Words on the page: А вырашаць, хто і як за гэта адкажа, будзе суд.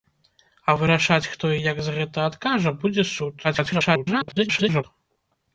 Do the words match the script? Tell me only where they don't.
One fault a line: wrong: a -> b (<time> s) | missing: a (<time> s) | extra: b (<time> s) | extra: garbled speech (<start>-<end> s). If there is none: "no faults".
extra: garbled speech (3.4-4.8 s)